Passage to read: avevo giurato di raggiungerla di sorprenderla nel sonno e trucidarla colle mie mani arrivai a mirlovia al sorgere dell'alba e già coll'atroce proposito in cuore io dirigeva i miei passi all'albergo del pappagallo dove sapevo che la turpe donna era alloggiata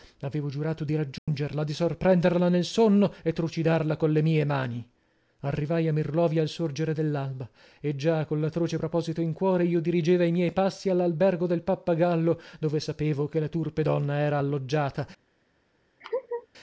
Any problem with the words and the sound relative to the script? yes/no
yes